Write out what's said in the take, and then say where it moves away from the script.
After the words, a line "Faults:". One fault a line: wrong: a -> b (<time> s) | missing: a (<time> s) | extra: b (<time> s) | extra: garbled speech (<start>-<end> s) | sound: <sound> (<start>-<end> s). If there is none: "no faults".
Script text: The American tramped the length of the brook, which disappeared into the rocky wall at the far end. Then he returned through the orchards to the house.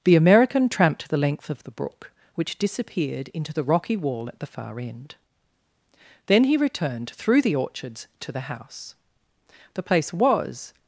The American tramped the length of the brook, which disappeared into the rocky wall at the far end. Then he returned through the orchards to the house. The place was
Faults:
extra: The place was (9.8 s)